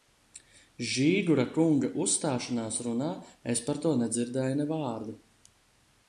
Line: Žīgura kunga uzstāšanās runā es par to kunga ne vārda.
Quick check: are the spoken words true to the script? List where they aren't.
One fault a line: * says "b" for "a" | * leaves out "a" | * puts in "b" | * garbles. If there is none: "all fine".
* says "nedzirdēju" for "kunga"